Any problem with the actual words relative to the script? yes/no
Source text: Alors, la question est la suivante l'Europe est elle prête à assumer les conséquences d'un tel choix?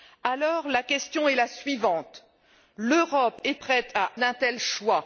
yes